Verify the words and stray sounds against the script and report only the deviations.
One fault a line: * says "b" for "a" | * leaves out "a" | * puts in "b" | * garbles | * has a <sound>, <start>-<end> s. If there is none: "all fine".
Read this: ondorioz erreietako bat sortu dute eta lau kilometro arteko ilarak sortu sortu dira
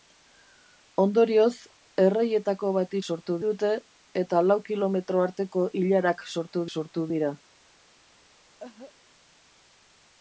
* has a cough, 8.6-8.9 s